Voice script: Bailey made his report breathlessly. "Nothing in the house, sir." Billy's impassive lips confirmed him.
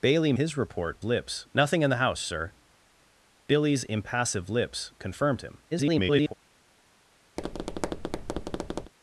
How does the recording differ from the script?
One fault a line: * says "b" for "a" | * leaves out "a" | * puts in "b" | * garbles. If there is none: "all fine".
* leaves out "made"
* says "lips" for "breathlessly"
* garbles